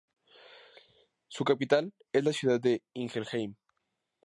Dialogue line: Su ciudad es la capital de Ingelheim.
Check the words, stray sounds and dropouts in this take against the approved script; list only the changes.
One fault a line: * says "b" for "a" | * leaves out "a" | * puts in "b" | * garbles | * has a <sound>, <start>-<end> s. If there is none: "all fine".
* says "capital" for "ciudad"
* says "ciudad" for "capital"